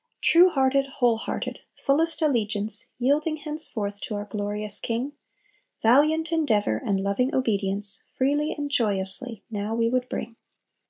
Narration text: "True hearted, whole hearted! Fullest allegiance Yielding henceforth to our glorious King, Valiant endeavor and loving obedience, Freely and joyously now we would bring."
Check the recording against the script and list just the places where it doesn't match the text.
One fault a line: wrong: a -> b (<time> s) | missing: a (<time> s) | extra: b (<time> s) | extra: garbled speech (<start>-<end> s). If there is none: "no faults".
no faults